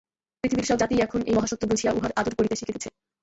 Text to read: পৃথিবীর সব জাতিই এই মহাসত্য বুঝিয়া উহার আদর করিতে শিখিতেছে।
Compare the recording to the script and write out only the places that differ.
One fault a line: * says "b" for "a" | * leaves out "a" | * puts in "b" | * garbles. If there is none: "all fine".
* puts in "এখন"